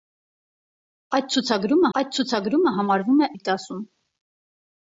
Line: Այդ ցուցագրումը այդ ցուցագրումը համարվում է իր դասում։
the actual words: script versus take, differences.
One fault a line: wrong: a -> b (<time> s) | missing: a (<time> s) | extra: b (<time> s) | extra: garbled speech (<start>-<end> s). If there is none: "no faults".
no faults